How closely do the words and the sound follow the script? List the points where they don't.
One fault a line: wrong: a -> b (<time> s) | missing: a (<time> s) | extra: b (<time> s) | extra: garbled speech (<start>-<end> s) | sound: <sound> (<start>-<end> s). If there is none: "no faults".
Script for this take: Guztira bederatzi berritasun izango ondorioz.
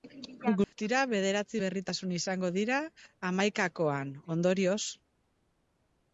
sound: dropout (0.6-0.7 s)
extra: dira hamaikakoan (2.6 s)